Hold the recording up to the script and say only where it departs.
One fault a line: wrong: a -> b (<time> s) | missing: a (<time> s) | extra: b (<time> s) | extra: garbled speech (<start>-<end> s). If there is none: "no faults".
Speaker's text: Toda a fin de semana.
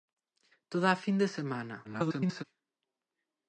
extra: garbled speech (1.8-2.4 s)